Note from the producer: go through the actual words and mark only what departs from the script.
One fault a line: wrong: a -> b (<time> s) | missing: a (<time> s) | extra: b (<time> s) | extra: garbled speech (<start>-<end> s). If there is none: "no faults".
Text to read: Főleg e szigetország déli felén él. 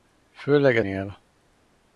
missing: szigetország déli felén (0.8 s)